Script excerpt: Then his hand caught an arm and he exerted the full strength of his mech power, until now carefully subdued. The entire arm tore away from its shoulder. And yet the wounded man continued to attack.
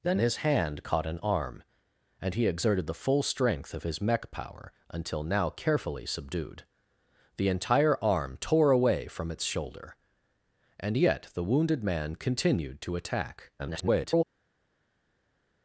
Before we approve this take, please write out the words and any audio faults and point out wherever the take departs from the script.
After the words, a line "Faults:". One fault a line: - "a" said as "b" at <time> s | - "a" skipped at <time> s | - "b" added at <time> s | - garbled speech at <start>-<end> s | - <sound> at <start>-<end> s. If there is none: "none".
Then his hand caught an arm and he exerted the full strength of his mech power, until now carefully subdued. The entire arm tore away from its shoulder. And yet the wounded man continued to attack. [garbled]
Faults:
- garbled speech at 13.6-14.2 s